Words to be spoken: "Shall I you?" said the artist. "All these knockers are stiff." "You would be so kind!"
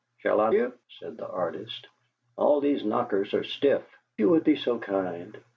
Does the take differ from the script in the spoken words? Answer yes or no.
no